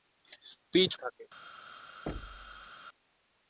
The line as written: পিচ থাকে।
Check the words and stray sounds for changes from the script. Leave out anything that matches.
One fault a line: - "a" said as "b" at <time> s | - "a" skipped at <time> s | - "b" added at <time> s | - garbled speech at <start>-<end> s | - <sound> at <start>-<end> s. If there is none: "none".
- thud at 2.1-2.7 s